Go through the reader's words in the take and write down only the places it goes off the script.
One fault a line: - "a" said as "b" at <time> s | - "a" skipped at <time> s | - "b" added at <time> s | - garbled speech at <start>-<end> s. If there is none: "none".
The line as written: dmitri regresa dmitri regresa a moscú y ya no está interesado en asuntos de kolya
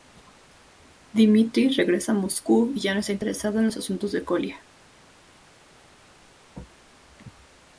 - "dmitri regresa" skipped at 2.1 s
- "los" added at 3.6 s